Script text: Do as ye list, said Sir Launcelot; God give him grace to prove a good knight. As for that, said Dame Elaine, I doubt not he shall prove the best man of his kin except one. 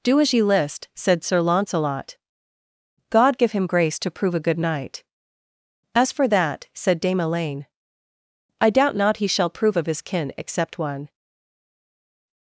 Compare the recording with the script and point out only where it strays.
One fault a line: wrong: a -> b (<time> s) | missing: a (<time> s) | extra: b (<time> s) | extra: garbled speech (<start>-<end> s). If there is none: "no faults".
missing: the best man (9.8 s)